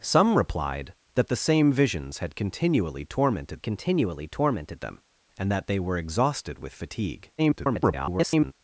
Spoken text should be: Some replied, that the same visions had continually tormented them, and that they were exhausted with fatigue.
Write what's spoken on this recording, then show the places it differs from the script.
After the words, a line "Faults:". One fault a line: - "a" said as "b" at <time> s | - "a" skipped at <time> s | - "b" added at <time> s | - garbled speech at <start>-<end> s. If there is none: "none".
Some replied, that the same visions had continually tormented continually tormented them, and that they were exhausted with fatigue. [garbled]
Faults:
- "continually tormented" added at 3.6 s
- garbled speech at 7.4-8.5 s